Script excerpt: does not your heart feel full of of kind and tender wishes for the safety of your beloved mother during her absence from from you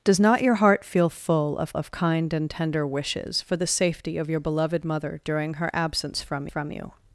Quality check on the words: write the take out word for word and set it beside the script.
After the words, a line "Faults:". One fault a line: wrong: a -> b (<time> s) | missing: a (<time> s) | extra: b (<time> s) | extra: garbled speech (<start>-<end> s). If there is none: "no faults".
does not your heart feel full of of kind and tender wishes for the safety of your beloved mother during her absence from from you
Faults:
no faults